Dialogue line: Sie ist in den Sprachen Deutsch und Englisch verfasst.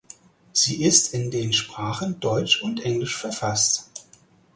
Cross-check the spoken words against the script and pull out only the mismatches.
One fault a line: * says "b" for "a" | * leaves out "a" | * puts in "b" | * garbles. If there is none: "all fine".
all fine